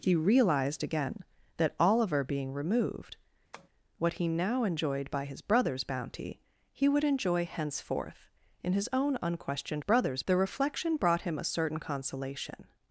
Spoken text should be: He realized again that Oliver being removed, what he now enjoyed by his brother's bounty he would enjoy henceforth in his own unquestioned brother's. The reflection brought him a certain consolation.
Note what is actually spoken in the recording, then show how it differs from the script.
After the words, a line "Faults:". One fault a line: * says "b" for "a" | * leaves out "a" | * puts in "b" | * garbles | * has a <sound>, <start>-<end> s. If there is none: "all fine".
He realized again that Oliver being removed, what he now enjoyed by his brother's bounty he would enjoy henceforth in his own unquestioned brother's. The reflection brought him a certain consolation.
Faults:
* has a tap, 3.5-3.7 s